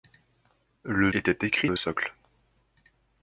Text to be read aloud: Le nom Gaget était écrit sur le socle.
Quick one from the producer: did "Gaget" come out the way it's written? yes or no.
no